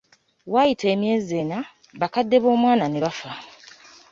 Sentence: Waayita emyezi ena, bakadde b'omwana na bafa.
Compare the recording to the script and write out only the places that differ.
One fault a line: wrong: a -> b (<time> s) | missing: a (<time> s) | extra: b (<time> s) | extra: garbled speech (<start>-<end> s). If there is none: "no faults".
wrong: na -> ne (2.9 s)